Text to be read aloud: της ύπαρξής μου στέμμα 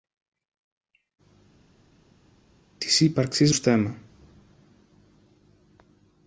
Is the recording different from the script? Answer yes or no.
yes